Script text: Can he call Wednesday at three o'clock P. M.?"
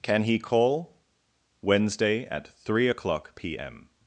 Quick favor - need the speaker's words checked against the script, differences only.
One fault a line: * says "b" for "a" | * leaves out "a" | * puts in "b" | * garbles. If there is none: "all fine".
all fine